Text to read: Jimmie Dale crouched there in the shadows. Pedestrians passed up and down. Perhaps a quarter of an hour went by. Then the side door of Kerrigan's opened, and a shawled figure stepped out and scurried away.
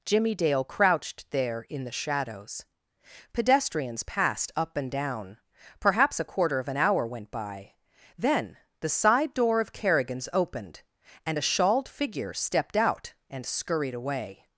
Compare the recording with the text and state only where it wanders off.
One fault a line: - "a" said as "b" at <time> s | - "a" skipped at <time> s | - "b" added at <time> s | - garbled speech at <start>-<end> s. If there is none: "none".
none